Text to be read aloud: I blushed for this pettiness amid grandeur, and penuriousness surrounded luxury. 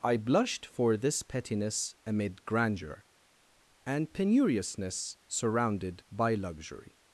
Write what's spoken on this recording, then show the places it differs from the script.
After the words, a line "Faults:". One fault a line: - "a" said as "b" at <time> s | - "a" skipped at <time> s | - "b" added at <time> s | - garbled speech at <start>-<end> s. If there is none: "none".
I blushed for this pettiness amid grandeur, and penuriousness surrounded by luxury.
Faults:
- "by" added at 6.1 s